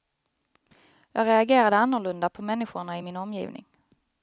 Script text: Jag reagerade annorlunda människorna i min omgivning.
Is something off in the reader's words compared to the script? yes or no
yes